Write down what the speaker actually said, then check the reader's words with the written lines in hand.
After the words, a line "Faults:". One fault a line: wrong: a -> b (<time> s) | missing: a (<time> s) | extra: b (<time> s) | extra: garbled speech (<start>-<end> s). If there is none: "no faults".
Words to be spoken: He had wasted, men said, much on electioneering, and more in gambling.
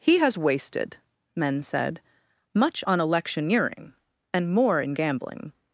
He has wasted, men said, much on electioneering, and more in gambling.
Faults:
wrong: had -> has (0.2 s)